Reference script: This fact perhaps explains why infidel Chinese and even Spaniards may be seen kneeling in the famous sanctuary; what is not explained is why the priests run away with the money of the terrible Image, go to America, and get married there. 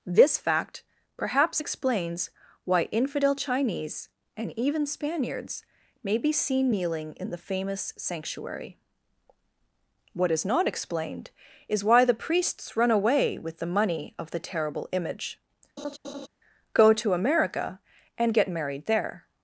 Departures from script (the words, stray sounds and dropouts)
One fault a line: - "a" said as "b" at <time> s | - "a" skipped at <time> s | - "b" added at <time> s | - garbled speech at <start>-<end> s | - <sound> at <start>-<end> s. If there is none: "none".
- laugh at 15.8-16.3 s